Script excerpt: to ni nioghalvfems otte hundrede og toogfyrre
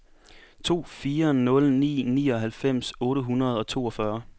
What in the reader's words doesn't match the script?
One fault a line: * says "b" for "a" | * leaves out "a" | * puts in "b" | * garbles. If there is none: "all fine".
* puts in "fire nul"